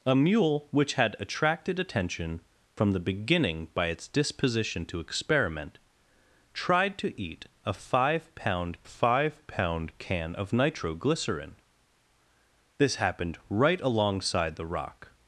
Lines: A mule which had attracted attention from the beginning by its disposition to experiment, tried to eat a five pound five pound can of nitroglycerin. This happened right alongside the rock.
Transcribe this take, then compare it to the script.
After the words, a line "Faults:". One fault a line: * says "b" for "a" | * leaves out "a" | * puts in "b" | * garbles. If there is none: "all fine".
A mule which had attracted attention from the beginning by its disposition to experiment, tried to eat a five pound five pound can of nitroglycerin. This happened right alongside the rock.
Faults:
all fine